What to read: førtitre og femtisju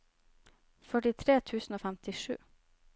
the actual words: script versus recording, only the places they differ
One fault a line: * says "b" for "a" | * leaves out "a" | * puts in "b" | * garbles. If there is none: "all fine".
* puts in "tusen"